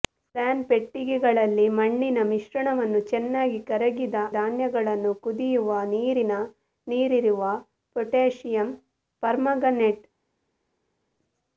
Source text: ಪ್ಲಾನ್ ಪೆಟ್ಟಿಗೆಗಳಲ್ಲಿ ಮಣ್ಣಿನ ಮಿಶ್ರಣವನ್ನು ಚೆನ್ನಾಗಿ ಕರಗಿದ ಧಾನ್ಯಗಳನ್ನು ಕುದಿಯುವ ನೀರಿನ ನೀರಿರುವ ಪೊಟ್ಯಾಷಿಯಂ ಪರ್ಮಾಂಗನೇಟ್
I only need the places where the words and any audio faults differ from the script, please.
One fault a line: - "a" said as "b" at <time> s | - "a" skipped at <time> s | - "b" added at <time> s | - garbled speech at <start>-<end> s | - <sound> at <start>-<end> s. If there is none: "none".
none